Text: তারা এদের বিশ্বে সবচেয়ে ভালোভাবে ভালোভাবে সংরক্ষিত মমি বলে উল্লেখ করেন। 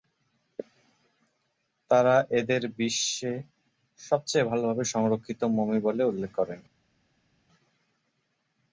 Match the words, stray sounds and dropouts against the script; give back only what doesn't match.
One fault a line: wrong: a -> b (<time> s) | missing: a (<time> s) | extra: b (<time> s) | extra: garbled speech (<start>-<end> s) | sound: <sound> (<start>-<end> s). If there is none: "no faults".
missing: ভালোভাবে (4.8 s)